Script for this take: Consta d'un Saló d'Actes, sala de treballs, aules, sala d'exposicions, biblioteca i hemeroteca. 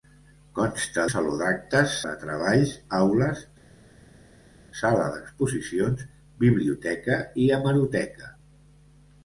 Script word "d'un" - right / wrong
wrong